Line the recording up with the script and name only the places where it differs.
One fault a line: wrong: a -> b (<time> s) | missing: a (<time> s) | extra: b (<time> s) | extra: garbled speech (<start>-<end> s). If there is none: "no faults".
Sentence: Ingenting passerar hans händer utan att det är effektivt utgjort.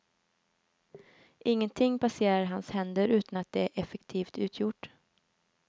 no faults